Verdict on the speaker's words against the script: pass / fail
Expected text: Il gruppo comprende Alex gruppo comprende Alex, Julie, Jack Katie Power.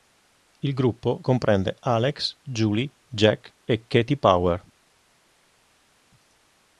fail